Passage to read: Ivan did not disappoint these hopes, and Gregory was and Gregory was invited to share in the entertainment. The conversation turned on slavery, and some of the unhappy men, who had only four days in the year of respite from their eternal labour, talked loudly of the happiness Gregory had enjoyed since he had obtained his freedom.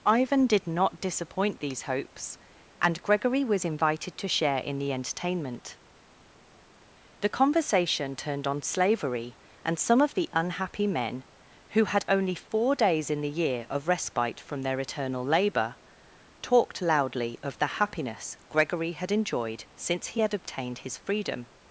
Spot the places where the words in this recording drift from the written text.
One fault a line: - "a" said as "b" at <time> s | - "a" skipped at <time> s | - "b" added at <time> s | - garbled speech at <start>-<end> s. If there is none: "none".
- "and Gregory was" skipped at 3.6 s